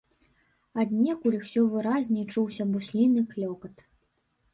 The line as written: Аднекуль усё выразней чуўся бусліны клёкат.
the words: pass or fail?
pass